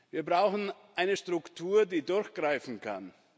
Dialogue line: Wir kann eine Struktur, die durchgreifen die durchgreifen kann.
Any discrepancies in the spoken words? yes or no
yes